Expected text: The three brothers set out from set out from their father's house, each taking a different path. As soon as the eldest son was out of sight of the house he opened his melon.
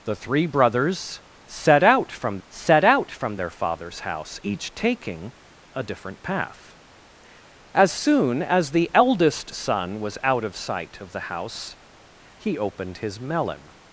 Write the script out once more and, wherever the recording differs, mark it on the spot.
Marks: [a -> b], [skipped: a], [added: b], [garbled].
The three brothers set out from set out from their father's house, each taking a different path. As soon as the eldest son was out of sight of the house he opened his melon.